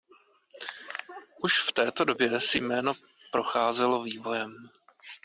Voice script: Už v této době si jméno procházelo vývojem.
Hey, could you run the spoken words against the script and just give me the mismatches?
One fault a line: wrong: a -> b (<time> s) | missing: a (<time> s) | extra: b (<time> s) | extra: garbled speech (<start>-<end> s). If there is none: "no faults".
no faults